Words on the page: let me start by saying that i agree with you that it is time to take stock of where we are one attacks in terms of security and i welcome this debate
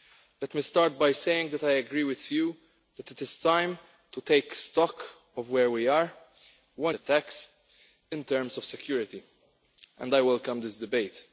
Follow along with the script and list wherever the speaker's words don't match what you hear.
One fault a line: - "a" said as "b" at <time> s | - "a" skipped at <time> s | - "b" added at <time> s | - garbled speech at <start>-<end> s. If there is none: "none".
none